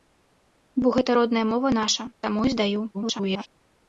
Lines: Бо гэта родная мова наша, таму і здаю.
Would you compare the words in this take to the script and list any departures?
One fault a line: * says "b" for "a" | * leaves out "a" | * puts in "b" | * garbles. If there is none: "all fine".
* garbles